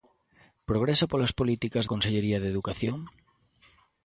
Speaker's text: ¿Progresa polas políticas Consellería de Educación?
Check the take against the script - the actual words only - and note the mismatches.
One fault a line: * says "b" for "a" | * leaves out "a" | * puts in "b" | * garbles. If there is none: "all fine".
all fine